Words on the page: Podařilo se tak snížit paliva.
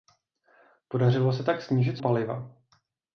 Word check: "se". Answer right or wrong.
right